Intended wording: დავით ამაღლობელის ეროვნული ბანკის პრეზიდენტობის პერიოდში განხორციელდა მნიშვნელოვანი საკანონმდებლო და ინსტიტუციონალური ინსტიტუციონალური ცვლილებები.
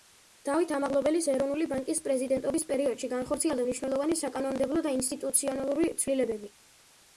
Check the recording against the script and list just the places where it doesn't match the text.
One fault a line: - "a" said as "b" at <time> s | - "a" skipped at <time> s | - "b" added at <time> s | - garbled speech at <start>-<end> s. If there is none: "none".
- "ინსტიტუციონალური" skipped at 5.9 s